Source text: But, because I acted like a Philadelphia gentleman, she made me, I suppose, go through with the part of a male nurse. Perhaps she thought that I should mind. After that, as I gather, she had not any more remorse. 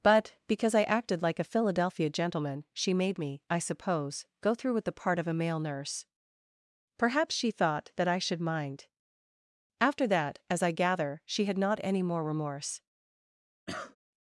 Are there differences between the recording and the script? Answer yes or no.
no